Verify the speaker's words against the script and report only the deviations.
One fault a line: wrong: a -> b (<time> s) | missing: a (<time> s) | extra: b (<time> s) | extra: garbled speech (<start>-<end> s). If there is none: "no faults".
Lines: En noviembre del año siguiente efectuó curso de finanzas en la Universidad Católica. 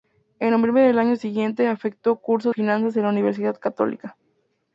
missing: de (2.5 s)